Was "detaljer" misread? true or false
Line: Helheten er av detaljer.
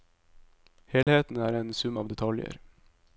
false